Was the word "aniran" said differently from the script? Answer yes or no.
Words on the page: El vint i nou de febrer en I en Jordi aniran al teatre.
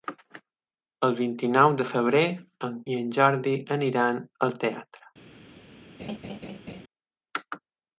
no